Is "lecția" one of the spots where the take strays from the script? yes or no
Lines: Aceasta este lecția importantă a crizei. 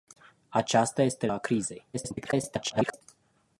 yes